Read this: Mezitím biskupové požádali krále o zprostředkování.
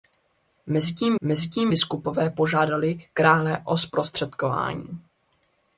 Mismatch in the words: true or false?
true